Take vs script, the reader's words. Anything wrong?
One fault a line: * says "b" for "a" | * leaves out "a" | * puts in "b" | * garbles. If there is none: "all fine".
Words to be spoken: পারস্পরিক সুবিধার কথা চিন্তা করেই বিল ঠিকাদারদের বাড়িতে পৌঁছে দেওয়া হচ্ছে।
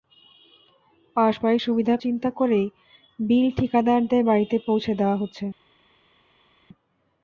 * leaves out "কথা"